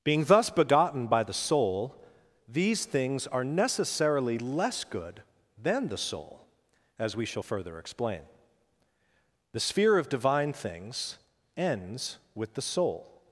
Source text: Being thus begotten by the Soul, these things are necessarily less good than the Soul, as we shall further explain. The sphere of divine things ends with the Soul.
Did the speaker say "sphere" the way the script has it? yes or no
yes